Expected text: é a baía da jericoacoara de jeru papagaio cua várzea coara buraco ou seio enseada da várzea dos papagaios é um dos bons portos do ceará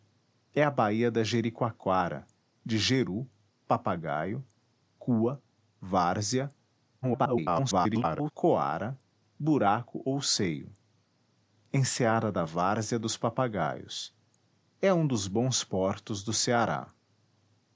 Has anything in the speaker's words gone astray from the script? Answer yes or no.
yes